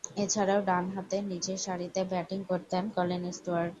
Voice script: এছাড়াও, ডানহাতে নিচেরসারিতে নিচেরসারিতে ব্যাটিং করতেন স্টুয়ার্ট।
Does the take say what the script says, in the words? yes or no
no